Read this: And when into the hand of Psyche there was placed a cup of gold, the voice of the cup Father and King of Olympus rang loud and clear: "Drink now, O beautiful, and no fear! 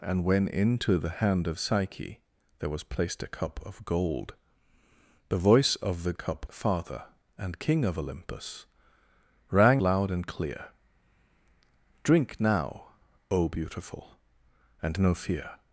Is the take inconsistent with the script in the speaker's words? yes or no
no